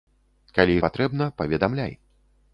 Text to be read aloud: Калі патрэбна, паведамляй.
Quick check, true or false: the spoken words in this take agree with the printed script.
true